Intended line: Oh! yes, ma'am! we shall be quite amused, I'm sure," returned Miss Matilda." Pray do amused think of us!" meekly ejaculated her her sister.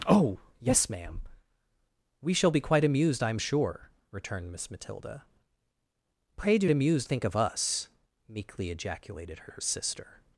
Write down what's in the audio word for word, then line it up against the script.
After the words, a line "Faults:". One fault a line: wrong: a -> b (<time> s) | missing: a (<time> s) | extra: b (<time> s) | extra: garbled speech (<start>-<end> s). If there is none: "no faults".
Oh! yes, ma'am! we shall be quite amused, I'm sure," returned Miss Matilda." Pray do amused think of us!" meekly ejaculated her her sister.
Faults:
no faults